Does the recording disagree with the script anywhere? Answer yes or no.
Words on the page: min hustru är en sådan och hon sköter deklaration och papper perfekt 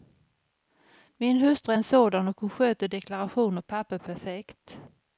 no